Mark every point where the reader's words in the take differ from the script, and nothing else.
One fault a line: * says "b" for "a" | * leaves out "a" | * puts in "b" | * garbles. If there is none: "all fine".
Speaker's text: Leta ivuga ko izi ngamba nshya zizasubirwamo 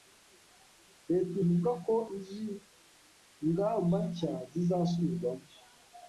all fine